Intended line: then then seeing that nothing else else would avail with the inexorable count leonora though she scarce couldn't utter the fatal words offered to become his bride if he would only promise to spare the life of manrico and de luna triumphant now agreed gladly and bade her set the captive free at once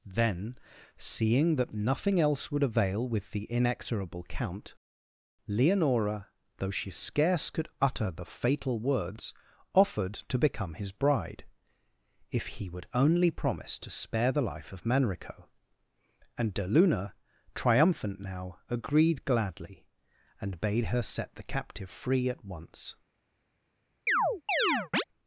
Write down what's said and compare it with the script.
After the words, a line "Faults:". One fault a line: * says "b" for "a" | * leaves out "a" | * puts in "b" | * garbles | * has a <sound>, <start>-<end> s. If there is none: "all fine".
then seeing that nothing else would avail with the inexorable count leonora though she scarce could utter the fatal words offered to become his bride if he would only promise to spare the life of manrico and de luna triumphant now agreed gladly and bade her set the captive free at once
Faults:
* leaves out "then"
* leaves out "else"
* says "could" for "couldn't"
* has a chirp, 24.1-25.0 s